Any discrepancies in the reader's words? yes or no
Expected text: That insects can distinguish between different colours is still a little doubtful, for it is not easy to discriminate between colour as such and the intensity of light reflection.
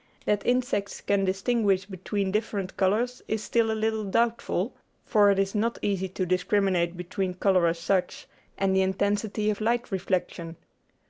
no